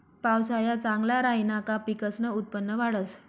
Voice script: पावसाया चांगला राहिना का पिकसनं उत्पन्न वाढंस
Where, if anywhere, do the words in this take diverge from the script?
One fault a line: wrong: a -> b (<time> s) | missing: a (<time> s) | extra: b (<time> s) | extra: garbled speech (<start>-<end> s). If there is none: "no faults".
no faults